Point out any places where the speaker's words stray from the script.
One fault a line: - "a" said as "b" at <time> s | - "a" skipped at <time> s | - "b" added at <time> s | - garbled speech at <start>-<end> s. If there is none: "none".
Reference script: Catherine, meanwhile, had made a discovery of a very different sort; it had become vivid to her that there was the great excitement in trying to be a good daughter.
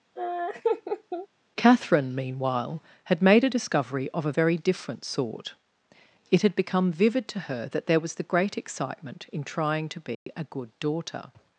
none